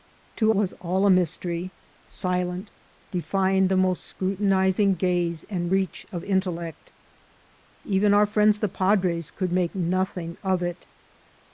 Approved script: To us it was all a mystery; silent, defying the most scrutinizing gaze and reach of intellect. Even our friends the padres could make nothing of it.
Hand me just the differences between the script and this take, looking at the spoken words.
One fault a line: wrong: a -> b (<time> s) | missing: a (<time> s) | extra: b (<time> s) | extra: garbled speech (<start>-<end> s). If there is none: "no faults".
missing: us it (0.5 s)